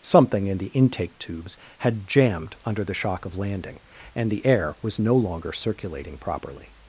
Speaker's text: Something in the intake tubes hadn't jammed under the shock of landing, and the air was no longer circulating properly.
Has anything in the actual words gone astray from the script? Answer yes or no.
yes